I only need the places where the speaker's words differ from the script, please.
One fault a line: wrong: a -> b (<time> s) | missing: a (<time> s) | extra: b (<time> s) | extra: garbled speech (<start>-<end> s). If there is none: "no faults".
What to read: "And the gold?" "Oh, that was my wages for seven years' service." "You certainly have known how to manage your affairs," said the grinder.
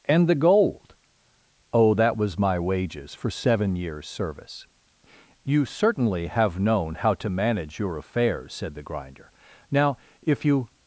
extra: Now if you (9.7 s)